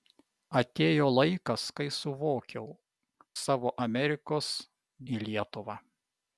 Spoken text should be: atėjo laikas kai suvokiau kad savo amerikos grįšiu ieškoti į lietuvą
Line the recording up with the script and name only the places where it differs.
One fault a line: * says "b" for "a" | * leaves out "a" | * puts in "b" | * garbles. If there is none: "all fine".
* leaves out "kad"
* leaves out "grįšiu ieškoti"